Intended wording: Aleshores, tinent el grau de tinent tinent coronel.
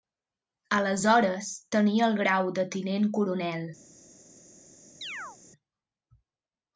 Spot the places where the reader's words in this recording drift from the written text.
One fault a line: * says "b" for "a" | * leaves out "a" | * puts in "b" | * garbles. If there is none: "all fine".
* says "tenia" for "tinent"
* leaves out "tinent"